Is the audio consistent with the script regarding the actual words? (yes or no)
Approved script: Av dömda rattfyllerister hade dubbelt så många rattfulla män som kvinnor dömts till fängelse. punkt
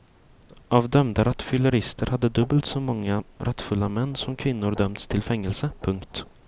yes